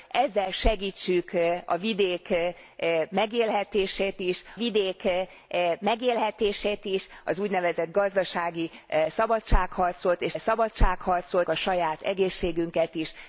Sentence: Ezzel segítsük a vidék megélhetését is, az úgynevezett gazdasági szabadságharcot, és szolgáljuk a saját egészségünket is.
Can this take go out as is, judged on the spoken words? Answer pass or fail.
fail